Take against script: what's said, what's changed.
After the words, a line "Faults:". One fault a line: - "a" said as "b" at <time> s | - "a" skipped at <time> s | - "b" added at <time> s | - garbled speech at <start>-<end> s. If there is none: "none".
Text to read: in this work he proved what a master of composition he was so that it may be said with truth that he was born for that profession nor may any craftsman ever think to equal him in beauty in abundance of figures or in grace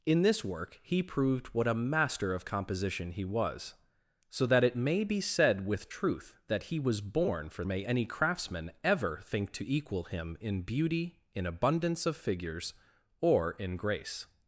in this work he proved what a master of composition he was so that it may be said with truth that he was born for may any craftsman ever think to equal him in beauty in abundance of figures or in grace
Faults:
- "that profession nor" skipped at 7.6 s